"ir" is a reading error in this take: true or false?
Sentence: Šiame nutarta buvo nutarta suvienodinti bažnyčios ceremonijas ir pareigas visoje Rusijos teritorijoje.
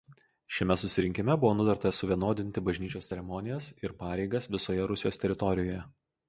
false